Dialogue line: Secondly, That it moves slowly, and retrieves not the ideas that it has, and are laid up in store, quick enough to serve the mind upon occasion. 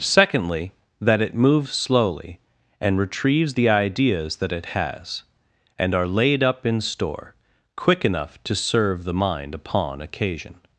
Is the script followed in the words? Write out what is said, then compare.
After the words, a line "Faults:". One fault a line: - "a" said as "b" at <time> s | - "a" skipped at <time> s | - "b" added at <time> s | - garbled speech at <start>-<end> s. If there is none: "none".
Secondly, That it moves slowly, and retrieves the ideas that it has, and are laid up in store, quick enough to serve the mind upon occasion.
Faults:
- "not" skipped at 3.5 s